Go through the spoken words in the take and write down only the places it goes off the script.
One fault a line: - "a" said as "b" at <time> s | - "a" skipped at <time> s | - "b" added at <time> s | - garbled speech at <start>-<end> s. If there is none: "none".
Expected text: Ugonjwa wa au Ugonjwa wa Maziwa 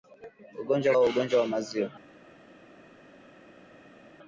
none